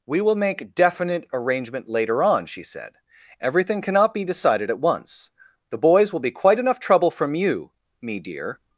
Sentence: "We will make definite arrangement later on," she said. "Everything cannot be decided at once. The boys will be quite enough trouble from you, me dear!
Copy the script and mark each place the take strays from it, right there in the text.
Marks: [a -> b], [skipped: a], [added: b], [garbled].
"We will make definite arrangement later on," she said. "Everything cannot be decided at once. The boys will be quite enough trouble from you, me dear!